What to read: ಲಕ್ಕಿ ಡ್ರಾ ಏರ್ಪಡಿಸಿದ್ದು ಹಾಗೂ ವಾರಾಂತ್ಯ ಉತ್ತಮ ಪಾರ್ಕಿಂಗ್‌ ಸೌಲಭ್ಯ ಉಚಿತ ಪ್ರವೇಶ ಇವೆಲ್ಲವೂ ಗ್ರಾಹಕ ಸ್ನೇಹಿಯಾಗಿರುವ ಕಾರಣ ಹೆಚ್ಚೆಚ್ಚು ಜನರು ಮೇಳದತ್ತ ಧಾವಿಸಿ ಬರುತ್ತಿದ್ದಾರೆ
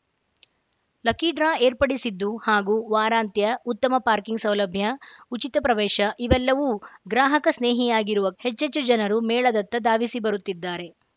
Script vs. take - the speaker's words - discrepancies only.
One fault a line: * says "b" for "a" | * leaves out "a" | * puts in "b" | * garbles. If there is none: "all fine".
* leaves out "ಕಾರಣ"